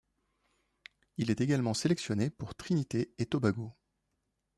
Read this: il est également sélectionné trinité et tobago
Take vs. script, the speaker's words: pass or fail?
fail